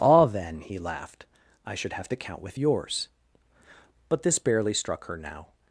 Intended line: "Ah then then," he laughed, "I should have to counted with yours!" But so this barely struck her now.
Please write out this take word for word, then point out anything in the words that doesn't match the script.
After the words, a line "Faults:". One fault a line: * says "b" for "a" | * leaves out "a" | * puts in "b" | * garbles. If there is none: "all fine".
"Ah then," he laughed, "I should have to count with yours!" But this barely struck her now.
Faults:
* leaves out "then"
* says "count" for "counted"
* leaves out "so"